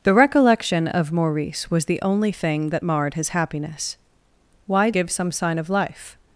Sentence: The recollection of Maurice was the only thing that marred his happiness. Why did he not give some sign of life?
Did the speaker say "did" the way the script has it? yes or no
no